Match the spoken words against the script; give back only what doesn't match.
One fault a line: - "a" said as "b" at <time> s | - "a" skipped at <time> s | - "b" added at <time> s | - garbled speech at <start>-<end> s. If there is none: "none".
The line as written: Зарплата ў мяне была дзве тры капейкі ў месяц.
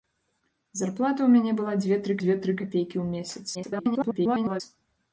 - "дзве тры" added at 2.2 s
- garbled speech at 3.5-4.6 s